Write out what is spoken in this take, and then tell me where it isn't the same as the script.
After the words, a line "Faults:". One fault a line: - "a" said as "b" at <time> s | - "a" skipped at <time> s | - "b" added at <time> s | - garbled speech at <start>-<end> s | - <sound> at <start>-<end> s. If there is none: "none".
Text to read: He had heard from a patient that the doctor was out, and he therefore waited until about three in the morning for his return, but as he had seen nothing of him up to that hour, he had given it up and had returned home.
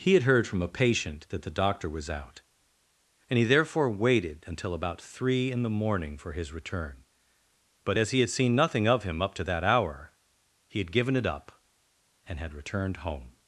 He had heard from a patient that the doctor was out, and he therefore waited until about three in the morning for his return, but as he had seen nothing of him up to that hour, he had given it up and had returned home.
Faults:
none